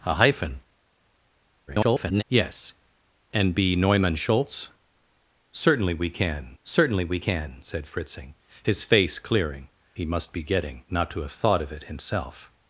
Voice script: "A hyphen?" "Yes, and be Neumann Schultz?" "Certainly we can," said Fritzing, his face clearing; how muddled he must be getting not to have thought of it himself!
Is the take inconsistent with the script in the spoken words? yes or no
yes